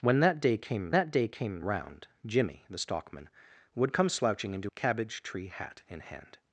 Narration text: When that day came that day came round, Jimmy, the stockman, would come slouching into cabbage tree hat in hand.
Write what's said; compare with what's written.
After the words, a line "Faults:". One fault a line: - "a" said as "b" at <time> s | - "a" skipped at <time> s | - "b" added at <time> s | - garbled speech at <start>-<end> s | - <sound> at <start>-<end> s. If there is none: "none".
When that day came that day came round, Jimmy, the stockman, would come slouching into cabbage tree hat in hand.
Faults:
none